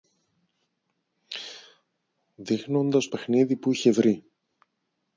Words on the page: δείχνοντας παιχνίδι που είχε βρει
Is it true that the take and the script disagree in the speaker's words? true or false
false